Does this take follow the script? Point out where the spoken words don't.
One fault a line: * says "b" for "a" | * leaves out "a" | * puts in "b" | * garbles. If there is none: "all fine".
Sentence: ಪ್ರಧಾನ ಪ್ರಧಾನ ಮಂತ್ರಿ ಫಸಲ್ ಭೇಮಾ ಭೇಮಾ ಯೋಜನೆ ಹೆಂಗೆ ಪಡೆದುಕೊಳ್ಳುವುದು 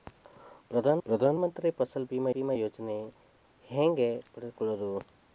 all fine